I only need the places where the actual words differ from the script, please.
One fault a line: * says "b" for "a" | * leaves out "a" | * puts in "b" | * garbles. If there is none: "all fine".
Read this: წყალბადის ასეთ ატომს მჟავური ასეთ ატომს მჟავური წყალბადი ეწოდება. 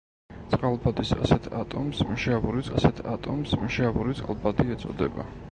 all fine